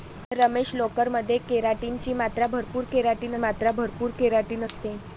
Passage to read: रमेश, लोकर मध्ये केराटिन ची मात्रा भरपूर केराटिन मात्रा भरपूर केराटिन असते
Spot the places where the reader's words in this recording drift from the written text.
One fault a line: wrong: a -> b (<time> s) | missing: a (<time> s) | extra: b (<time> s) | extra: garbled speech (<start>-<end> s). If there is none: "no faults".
no faults